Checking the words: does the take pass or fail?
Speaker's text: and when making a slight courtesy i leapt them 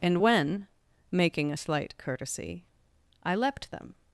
pass